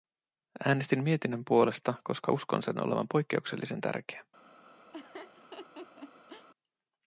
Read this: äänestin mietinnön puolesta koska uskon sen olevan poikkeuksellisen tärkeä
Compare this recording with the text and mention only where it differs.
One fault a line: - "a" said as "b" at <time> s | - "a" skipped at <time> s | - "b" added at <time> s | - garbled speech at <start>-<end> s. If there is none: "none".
none